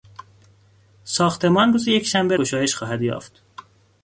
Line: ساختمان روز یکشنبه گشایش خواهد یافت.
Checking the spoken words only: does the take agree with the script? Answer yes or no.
yes